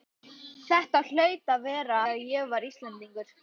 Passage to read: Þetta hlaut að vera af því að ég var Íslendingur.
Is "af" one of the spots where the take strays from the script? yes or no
yes